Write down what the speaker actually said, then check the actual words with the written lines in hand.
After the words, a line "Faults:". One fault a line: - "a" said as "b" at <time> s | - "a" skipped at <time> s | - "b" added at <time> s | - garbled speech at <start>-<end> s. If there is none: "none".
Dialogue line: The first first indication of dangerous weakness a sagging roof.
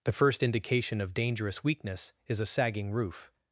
The first indication of dangerous weakness is a sagging roof.
Faults:
- "first" skipped at 0.4 s
- "is" added at 2.3 s